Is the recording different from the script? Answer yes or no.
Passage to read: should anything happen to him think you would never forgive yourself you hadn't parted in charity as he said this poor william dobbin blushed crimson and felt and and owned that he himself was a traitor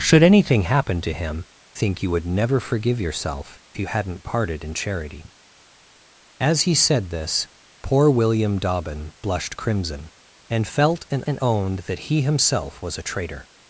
no